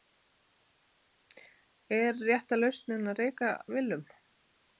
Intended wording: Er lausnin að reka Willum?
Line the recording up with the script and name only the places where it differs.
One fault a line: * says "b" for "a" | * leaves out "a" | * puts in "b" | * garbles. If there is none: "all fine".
* puts in "rétta"